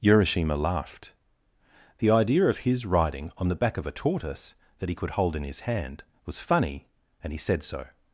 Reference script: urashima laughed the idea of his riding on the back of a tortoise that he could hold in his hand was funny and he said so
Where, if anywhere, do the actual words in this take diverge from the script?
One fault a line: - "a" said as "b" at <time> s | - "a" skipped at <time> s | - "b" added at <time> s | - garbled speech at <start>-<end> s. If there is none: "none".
none